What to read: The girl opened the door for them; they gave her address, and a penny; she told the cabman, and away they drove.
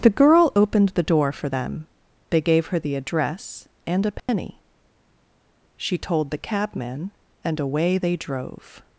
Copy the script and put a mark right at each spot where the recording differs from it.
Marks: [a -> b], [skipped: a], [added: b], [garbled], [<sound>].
The girl opened the door for them; they gave her [added: the] address, and a penny; [dropout] she told the cabman, and away they drove.